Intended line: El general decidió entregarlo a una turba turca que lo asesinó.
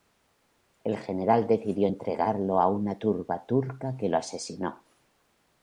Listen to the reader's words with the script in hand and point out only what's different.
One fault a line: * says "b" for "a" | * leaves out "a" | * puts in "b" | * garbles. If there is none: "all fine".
all fine